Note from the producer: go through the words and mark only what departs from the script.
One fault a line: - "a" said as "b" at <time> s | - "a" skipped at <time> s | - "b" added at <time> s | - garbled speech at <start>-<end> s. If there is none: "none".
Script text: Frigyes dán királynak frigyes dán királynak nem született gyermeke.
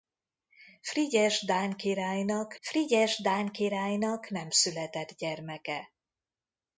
none